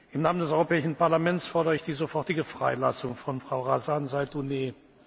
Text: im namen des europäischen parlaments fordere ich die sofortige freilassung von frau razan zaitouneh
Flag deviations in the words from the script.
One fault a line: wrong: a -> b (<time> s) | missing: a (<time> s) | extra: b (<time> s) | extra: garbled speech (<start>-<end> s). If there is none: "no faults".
no faults